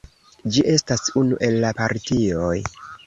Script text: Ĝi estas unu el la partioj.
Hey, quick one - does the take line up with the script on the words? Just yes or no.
yes